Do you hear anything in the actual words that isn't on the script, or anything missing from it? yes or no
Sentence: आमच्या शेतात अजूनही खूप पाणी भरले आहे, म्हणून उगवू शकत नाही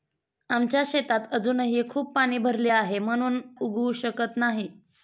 no